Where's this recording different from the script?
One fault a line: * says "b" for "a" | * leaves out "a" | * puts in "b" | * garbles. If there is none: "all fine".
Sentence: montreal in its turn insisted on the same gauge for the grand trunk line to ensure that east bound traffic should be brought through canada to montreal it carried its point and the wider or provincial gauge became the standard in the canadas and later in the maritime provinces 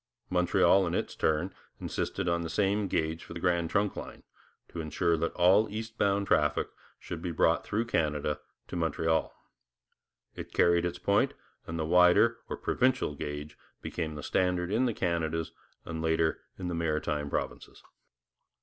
* puts in "all"